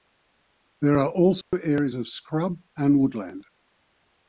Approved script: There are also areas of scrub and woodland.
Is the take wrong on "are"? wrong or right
right